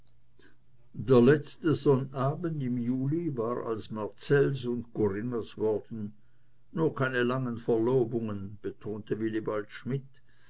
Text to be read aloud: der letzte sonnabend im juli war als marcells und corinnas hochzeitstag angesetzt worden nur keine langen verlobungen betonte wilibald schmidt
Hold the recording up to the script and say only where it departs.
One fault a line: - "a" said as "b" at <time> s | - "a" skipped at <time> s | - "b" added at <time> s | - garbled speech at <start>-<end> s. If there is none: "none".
- "hochzeitstag angesetzt" skipped at 5.6 s